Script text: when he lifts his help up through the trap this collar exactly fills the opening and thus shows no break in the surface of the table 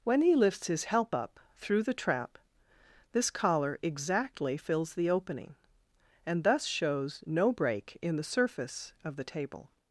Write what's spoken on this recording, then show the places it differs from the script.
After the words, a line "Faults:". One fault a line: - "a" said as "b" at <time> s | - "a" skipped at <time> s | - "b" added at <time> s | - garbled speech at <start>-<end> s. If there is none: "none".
when he lifts his help up through the trap this collar exactly fills the opening and thus shows no break in the surface of the table
Faults:
none